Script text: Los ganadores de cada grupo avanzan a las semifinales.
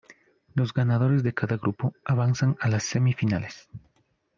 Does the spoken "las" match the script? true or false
true